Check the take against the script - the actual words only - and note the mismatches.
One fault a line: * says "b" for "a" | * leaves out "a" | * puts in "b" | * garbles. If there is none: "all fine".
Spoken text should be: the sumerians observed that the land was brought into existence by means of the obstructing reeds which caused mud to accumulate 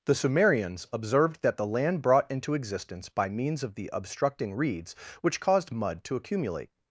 * leaves out "was"